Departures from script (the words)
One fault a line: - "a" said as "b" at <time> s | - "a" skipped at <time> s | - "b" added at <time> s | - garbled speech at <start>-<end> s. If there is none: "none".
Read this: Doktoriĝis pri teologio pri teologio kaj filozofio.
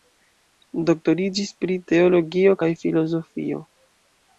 - "pri teologio" skipped at 2.6 s